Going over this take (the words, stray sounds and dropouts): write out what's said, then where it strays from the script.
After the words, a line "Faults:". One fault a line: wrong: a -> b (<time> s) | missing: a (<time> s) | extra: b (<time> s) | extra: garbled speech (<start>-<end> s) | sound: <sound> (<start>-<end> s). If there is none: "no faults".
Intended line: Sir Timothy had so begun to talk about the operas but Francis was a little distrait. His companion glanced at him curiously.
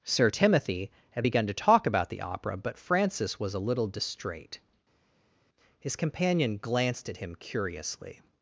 Sir Timothy had begun to talk about the opera but Francis was a little distrait. His companion glanced at him curiously.
Faults:
missing: so (1.2 s)
wrong: operas -> opera (2.2 s)